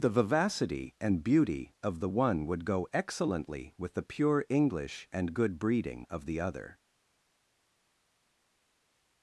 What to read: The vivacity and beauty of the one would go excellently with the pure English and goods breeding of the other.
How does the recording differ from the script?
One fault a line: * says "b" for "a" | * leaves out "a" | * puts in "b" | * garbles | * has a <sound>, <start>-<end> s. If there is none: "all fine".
* says "good" for "goods"